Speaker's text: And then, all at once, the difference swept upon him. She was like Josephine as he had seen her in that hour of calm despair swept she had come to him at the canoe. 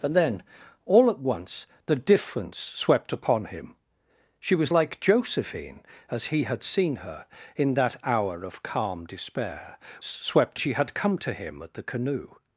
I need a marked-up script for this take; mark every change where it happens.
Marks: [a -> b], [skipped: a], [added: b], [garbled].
And then, all at once, the difference swept upon him. She was like Josephine as he had seen her in that hour of calm despair swept she had come to him at the canoe.